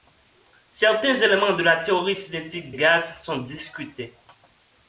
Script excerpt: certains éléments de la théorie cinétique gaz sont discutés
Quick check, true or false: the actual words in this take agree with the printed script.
true